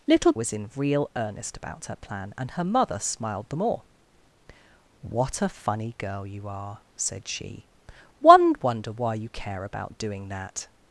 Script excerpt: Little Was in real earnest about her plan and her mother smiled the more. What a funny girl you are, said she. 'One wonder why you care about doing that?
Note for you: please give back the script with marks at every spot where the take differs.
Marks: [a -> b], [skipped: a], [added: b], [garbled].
Little Was in real earnest about her plan and her mother smiled the more. What a funny girl you are, said she. 'One wonder why you care about doing that?